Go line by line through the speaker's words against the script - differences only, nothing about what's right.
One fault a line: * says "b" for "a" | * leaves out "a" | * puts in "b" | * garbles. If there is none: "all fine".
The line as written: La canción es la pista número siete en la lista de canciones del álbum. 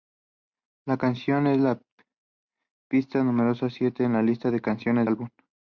* leaves out "del"